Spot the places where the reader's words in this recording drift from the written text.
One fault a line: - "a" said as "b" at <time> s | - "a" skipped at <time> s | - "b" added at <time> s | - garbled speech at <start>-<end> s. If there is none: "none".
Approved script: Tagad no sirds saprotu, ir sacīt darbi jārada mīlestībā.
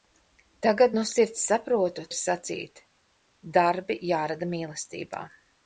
none